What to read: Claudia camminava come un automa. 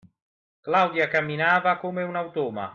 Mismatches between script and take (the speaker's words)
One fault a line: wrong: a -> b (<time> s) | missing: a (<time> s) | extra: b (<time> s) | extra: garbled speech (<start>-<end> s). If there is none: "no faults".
no faults